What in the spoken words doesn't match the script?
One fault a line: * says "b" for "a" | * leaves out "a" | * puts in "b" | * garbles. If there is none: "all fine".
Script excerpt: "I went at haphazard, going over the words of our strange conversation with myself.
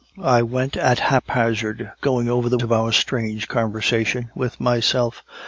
* leaves out "words"